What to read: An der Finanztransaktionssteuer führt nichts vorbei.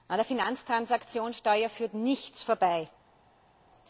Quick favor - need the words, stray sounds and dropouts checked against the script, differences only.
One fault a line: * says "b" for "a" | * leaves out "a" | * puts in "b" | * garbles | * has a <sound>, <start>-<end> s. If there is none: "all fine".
all fine